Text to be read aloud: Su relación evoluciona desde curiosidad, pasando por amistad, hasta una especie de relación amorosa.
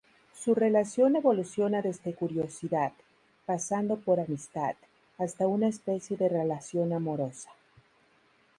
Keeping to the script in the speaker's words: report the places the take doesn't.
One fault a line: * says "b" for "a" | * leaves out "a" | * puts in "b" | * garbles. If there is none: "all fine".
all fine